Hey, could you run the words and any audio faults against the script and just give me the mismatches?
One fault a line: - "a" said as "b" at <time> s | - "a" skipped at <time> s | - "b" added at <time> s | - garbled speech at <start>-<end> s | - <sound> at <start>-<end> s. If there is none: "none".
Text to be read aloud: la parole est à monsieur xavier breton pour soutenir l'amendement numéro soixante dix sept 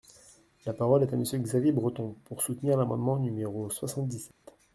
- dropout at 4.3-4.4 s